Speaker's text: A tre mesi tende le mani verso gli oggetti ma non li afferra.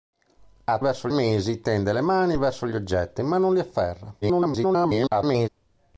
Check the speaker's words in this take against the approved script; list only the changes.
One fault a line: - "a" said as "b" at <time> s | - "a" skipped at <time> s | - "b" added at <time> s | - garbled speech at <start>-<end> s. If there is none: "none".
- "tre" said as "verso" at 0.8 s
- garbled speech at 4.2-5.5 s